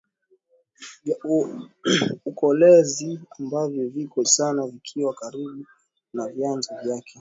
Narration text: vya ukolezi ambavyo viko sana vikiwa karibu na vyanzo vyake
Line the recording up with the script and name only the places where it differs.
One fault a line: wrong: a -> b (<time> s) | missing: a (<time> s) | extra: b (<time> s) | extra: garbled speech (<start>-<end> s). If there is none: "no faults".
no faults